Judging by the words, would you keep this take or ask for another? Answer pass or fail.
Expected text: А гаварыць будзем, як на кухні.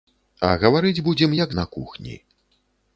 pass